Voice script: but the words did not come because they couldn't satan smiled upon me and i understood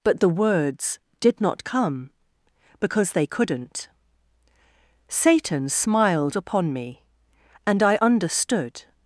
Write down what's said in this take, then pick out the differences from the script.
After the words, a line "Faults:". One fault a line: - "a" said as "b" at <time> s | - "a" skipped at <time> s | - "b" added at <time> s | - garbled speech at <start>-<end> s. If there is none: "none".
but the words did not come because they couldn't satan smiled upon me and i understood
Faults:
none